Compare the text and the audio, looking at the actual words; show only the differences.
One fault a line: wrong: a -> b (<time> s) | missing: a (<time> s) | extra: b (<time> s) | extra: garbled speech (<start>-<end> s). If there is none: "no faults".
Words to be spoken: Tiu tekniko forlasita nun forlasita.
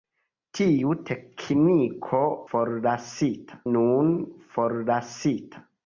no faults